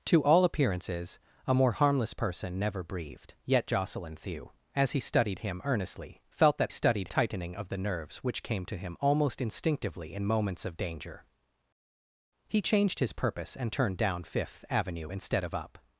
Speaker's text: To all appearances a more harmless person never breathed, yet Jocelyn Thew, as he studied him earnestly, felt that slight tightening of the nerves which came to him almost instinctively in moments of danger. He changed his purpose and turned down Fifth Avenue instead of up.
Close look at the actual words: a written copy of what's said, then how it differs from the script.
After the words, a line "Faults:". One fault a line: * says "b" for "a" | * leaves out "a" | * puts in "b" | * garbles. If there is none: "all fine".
To all appearances a more harmless person never breathed, yet Jocelyn Thew, as he studied him earnestly, felt that studied tightening of the nerves which came to him almost instinctively in moments of danger. He changed his purpose and turned down Fifth Avenue instead of up.
Faults:
* says "studied" for "slight"